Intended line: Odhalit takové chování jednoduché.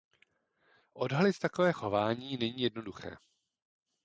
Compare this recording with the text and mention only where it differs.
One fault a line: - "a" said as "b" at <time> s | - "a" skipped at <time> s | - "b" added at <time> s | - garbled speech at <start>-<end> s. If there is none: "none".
- "není" added at 2.4 s